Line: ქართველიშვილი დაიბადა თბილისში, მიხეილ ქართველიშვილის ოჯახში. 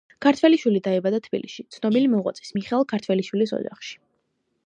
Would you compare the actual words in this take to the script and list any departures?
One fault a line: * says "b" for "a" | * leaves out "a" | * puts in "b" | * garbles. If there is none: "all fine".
* puts in "ცნობილი მოღვაწის"